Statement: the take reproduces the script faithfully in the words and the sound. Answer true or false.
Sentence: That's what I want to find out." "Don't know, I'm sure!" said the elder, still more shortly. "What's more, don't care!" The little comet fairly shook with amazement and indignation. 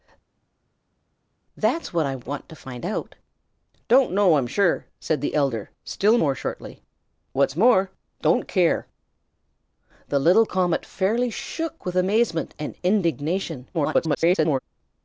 false